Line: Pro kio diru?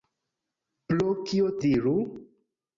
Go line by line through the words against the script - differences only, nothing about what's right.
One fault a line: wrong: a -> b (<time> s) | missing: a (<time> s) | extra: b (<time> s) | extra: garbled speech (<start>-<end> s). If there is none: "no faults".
no faults